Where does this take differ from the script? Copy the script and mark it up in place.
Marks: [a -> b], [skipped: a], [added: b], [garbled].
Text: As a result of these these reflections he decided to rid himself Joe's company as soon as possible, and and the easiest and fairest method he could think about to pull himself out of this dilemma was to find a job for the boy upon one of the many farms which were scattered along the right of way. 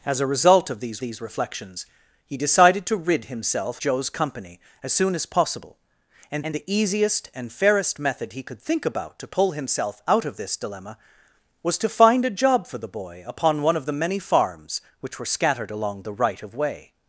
As a result of these these reflections he decided to rid himself Joe's company as soon as possible, and and the easiest and fairest method he could think about to pull himself out of this dilemma was to find a job for the boy upon one of the many farms which were scattered along the right of way.